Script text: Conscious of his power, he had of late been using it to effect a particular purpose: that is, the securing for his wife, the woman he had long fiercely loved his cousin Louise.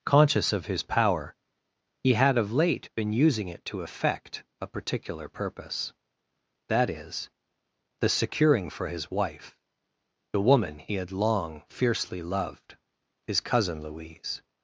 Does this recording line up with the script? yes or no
yes